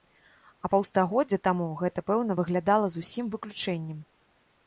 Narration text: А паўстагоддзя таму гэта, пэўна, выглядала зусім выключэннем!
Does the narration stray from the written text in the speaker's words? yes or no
no